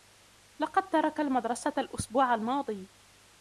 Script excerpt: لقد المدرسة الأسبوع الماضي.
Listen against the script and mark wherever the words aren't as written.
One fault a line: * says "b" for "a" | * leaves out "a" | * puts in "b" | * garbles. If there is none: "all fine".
* puts in "ترك"